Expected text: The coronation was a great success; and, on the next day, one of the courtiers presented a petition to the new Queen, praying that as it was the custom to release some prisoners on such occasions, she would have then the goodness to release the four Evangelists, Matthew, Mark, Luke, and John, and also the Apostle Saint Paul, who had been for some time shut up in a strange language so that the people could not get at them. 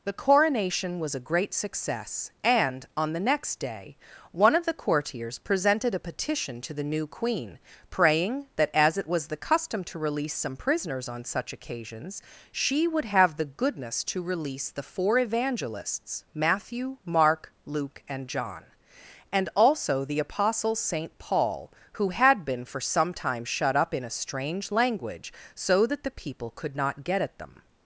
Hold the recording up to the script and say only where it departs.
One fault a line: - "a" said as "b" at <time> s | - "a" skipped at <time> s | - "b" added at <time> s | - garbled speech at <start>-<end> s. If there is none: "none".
- "then" skipped at 13.4 s